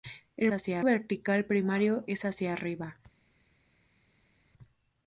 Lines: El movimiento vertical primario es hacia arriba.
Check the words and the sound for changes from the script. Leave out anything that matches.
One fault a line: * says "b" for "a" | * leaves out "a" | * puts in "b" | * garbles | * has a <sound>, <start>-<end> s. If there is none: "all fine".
* says "hacia" for "movimiento"